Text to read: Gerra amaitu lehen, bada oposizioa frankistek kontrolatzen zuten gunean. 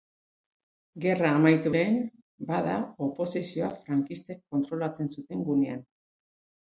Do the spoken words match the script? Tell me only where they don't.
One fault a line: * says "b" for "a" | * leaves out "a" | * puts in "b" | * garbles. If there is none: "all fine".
all fine